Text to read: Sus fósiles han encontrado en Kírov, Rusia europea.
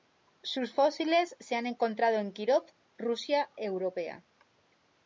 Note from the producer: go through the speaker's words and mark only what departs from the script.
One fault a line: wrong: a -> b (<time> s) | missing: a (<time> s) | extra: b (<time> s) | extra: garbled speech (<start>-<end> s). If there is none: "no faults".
extra: se (1.4 s)